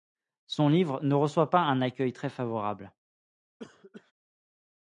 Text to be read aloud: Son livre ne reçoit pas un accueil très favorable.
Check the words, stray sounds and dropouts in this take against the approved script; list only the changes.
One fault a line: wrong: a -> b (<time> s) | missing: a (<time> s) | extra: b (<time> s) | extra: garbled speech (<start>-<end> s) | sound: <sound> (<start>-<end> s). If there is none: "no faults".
sound: cough (3.6-4.1 s)